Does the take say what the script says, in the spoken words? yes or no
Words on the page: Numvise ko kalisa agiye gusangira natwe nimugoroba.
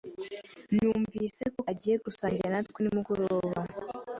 no